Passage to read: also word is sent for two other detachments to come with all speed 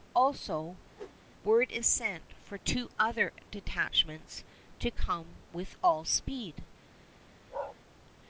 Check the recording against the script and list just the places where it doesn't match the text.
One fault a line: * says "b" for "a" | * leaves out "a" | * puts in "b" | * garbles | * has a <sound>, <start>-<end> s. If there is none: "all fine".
* has a whoosh, 0.9-1.2 s
* has a bark, 7.5-7.8 s